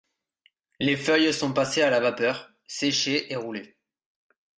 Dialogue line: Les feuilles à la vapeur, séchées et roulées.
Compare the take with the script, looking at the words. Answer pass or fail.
fail